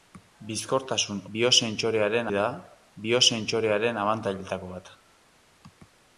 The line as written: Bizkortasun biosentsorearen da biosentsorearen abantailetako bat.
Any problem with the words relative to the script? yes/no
no